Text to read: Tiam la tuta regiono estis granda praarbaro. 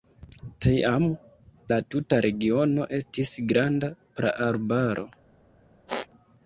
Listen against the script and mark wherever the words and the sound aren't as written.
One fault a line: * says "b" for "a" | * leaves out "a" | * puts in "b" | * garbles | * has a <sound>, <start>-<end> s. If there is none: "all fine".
* has a squeak, 5.9-6.1 s